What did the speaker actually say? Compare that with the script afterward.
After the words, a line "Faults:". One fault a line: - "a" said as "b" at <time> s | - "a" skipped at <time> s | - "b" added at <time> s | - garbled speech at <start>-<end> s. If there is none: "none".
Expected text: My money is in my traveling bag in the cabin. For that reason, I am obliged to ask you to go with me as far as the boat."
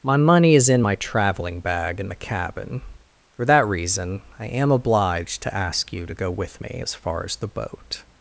My money is in my traveling bag in the cabin. For that reason, I am obliged to ask you to go with me as far as the boat."
Faults:
none